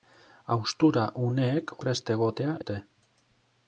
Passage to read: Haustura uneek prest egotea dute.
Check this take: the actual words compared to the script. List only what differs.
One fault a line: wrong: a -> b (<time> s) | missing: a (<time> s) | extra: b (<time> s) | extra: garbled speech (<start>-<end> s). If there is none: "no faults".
no faults